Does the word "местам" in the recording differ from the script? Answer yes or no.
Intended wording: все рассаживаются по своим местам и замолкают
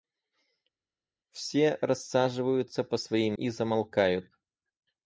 yes